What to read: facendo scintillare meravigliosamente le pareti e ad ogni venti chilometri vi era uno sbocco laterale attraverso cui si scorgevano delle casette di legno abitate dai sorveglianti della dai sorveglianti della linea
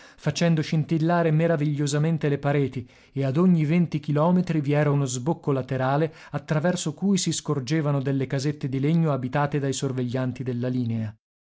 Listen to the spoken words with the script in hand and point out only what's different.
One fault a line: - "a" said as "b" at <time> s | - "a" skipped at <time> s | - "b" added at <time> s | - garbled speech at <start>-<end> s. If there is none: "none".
- "dai sorveglianti della" skipped at 10.7 s